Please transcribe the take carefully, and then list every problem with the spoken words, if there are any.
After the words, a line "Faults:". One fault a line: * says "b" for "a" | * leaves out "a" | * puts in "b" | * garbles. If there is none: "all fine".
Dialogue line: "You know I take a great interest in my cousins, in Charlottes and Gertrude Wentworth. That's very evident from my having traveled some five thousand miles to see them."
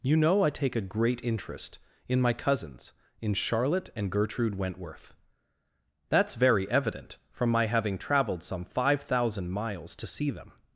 "You know I take a great interest in my cousins, in Charlotte and Gertrude Wentworth. That's very evident from my having traveled some five thousand miles to see them."
Faults:
* says "Charlotte" for "Charlottes"